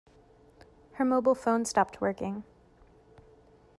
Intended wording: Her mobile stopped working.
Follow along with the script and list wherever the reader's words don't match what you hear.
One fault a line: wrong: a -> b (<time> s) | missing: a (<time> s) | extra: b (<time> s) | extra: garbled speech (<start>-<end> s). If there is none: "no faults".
extra: phone (1.4 s)